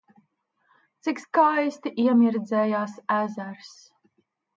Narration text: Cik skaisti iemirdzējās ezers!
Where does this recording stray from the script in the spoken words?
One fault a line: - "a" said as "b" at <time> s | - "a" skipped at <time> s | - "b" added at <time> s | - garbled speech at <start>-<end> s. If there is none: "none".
none